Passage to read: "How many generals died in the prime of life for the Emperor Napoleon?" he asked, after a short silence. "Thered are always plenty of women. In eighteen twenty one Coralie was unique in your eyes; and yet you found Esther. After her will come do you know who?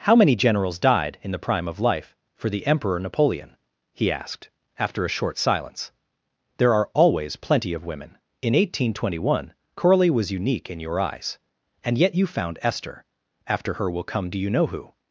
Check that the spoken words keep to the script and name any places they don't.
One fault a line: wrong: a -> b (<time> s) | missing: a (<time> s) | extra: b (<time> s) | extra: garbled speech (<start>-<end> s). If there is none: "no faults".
wrong: Thered -> There (6.6 s)